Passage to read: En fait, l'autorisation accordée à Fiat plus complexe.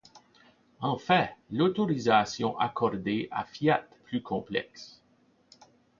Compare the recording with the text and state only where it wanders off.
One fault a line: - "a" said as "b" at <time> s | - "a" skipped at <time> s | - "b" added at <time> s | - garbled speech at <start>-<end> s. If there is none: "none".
none